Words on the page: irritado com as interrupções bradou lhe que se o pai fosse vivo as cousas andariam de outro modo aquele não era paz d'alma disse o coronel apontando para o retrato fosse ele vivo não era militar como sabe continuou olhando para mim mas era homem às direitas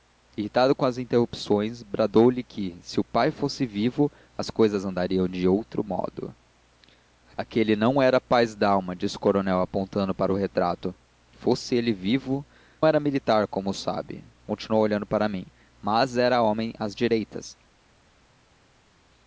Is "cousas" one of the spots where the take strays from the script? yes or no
no